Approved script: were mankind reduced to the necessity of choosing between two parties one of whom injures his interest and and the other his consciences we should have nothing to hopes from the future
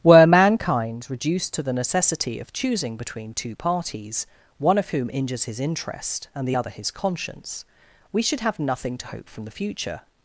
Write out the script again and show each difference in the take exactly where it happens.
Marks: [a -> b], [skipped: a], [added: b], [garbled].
were mankind reduced to the necessity of choosing between two parties one of whom injures his interest and [skipped: and] the other his [consciences -> conscience] we should have nothing to [hopes -> hope] from the future